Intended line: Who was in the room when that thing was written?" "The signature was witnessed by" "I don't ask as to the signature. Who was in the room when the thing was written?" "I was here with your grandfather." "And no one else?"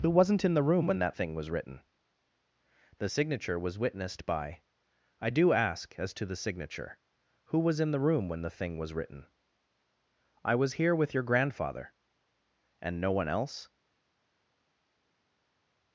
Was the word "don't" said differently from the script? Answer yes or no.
yes